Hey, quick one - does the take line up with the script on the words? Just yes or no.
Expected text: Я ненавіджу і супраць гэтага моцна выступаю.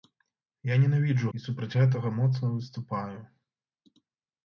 yes